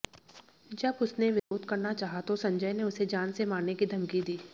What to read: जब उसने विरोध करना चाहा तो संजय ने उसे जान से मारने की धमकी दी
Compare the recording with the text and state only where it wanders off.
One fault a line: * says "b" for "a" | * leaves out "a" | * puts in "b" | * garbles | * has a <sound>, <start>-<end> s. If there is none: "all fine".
* has a dropout, 1.4-1.5 s